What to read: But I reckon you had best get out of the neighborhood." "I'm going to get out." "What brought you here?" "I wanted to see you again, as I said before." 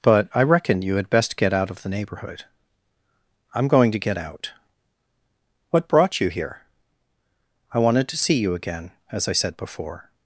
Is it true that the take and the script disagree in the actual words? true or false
false